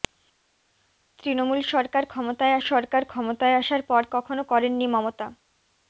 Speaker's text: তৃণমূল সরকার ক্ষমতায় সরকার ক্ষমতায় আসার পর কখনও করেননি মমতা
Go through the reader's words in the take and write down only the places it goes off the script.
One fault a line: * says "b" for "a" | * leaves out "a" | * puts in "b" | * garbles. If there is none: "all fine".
all fine